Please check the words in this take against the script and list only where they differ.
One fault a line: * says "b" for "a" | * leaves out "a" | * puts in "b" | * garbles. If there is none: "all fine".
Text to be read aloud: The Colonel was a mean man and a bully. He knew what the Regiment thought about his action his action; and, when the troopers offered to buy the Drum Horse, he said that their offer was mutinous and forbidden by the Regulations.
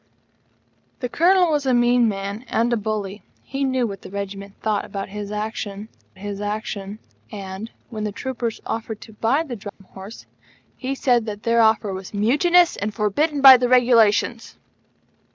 all fine